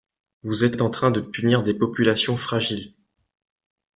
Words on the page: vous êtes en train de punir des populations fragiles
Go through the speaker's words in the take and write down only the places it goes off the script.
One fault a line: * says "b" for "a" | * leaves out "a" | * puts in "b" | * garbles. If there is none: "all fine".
* puts in "êtes"